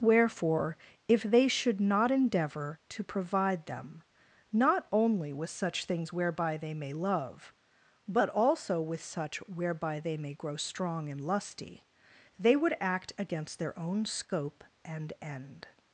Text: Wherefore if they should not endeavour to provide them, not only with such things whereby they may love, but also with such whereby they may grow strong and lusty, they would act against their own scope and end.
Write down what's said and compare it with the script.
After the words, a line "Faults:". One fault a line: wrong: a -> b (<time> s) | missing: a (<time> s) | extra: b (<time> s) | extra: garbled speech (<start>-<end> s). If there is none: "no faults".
Wherefore if they should not endeavour to provide them, not only with such things whereby they may love, but also with such whereby they may grow strong and lusty, they would act against their own scope and end.
Faults:
no faults